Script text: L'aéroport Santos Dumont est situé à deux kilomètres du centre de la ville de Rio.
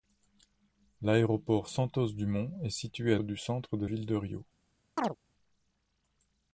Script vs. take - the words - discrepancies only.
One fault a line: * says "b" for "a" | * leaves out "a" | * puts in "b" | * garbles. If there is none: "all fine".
* leaves out "deux kilomètres"
* leaves out "la"